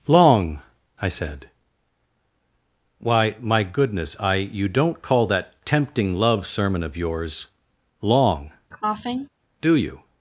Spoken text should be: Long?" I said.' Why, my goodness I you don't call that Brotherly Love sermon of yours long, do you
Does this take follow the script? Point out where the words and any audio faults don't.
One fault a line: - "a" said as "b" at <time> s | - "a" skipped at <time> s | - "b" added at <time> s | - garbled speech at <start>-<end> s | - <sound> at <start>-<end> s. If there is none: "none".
- "Brotherly" said as "Tempting" at 5.6 s
- cough at 8.7-9.3 s